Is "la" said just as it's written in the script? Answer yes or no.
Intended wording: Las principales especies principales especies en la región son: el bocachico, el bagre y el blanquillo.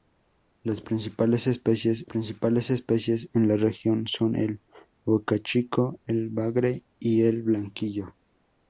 yes